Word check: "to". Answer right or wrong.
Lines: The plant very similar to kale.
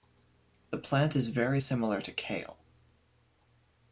right